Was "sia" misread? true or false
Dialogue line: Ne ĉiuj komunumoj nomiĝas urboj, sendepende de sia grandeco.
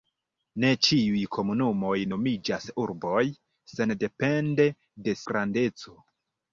true